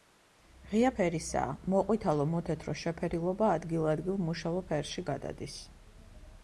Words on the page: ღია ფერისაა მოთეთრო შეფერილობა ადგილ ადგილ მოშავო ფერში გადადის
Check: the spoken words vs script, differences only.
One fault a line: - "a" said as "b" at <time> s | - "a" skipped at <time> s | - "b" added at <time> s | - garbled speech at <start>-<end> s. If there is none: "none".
- "მოყვითალო" added at 1.7 s